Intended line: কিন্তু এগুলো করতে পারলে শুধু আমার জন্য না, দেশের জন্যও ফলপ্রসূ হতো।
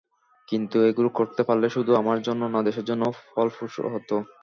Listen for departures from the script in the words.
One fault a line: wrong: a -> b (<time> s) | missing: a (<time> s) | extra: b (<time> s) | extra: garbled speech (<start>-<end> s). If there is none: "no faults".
no faults